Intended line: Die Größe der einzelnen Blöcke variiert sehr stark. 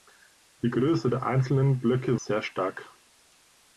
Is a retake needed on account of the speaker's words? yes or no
yes